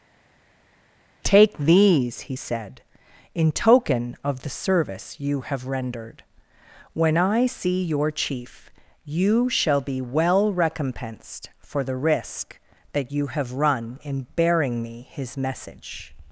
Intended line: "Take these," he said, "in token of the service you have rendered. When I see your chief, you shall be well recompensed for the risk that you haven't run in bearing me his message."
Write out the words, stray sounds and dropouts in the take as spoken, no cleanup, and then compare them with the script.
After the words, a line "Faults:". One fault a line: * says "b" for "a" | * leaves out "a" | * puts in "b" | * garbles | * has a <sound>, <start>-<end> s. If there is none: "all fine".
"Take these," he said, "in token of the service you have rendered. When I see your chief, you shall be well recompensed for the risk that you have run in bearing me his message."
Faults:
* says "have" for "haven't"